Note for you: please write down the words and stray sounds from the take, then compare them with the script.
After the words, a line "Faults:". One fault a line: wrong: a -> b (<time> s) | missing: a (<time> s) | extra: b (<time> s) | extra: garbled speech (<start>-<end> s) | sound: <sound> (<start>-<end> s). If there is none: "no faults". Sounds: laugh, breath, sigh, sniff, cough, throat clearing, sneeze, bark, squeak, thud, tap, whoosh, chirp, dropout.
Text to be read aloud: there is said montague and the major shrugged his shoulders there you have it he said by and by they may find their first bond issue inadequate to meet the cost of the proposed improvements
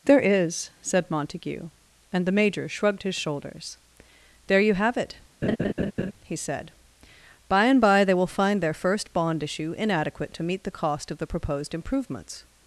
there is said montague and the major shrugged his shoulders there you have it he said by and by they will find their first bond issue inadequate to meet the cost of the proposed improvements
Faults:
sound: laugh (5.4-6.1 s)
wrong: may -> will (8.1 s)